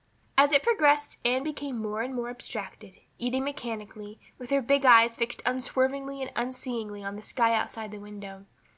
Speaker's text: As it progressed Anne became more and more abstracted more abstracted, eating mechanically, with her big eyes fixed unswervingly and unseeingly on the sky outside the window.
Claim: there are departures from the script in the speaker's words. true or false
true